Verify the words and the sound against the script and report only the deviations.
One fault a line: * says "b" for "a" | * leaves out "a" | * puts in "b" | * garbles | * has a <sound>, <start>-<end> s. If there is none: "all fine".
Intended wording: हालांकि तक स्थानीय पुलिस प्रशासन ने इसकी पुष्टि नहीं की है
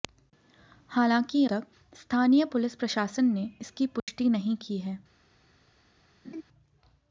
* has a dropout, 4.0-4.1 s
* has a laugh, 6.2-6.4 s